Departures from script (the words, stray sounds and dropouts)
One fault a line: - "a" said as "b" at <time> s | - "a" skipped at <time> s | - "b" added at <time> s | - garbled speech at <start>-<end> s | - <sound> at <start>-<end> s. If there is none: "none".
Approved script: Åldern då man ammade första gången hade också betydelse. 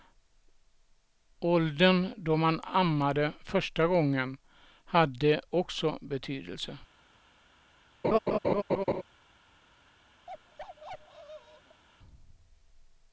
- laugh at 8.0-9.0 s
- bark at 10.3-11.8 s